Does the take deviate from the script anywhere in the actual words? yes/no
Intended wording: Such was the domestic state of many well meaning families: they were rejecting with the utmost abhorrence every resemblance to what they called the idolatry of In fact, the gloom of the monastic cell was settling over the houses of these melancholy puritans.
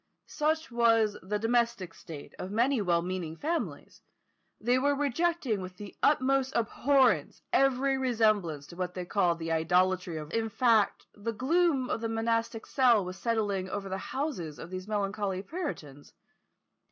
no